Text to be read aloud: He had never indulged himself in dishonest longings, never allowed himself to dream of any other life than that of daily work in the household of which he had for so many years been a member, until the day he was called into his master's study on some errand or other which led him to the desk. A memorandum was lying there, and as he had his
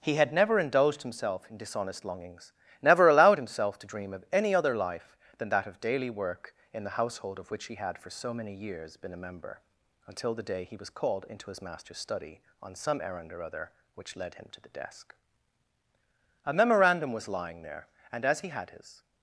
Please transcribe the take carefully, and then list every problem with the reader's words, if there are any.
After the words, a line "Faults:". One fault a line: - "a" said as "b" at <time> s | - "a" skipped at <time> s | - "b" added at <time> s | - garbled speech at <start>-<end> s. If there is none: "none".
He had never indulged himself in dishonest longings, never allowed himself to dream of any other life than that of daily work in the household of which he had for so many years been a member, until the day he was called into his master's study on some errand or other which led him to the desk. A memorandum was lying there, and as he had his
Faults:
none